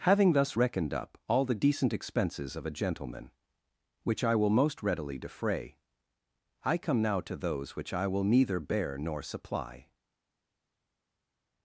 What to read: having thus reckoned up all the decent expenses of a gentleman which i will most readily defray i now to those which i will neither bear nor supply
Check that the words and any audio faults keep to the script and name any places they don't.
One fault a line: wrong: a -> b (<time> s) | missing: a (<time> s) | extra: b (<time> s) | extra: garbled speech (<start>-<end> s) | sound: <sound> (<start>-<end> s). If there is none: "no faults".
extra: come (6.8 s)